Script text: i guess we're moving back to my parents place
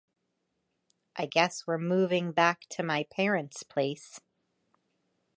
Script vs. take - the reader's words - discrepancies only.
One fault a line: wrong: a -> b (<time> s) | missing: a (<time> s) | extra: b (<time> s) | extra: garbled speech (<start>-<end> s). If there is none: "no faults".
no faults